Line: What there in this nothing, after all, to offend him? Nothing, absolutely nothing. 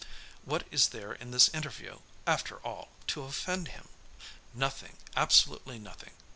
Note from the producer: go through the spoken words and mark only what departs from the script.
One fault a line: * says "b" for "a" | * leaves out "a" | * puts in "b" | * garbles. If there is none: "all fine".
* puts in "is"
* says "interview" for "nothing"